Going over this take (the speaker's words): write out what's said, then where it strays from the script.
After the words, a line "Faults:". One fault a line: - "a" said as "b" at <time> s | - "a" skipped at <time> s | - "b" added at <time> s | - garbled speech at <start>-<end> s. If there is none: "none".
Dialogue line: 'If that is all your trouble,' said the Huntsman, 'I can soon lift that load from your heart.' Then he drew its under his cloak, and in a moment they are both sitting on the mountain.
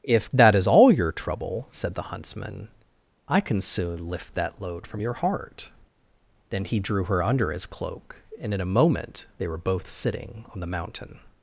'If that is all your trouble,' said the Huntsman, 'I can soon lift that load from your heart.' Then he drew her under his cloak, and in a moment they were both sitting on the mountain.
Faults:
- "its" said as "her" at 7.0 s
- "are" said as "were" at 9.5 s